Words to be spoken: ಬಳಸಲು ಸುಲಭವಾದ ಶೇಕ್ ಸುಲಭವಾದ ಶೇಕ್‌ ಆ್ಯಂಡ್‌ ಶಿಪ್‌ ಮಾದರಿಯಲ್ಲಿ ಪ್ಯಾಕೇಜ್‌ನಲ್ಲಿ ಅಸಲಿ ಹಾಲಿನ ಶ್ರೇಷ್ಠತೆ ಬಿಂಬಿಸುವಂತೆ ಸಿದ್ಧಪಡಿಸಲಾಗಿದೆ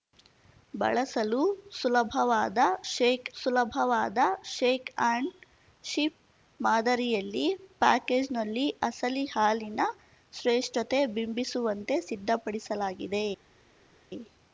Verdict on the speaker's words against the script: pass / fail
pass